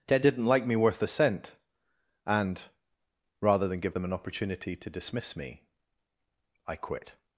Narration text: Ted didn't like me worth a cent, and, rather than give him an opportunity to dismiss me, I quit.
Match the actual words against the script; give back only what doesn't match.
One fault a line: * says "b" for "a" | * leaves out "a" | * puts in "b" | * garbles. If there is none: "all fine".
* says "them" for "him"